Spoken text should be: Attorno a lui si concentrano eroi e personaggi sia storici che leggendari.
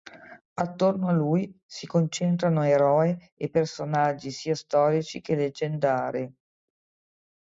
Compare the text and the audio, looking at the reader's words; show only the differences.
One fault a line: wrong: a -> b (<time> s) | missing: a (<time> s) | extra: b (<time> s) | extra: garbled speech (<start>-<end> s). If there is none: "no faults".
no faults